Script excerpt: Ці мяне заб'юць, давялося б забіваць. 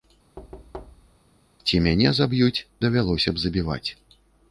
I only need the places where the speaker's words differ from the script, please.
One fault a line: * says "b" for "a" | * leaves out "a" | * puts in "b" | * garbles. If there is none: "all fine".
all fine